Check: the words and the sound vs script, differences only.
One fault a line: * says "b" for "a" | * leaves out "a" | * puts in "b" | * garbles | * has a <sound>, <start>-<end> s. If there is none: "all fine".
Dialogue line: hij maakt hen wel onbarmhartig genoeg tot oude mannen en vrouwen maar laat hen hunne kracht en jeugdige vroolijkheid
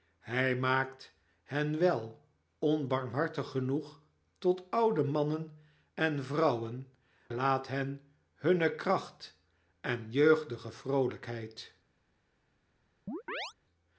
* leaves out "maar"
* has a chirp, 13.1-13.5 s